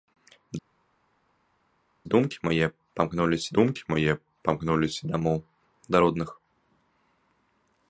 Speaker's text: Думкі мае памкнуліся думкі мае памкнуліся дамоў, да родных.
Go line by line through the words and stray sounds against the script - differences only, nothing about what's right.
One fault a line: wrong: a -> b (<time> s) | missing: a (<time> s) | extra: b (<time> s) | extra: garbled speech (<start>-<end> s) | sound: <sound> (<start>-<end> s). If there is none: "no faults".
no faults